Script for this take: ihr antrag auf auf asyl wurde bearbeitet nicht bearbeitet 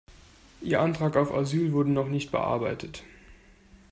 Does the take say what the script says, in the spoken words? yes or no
no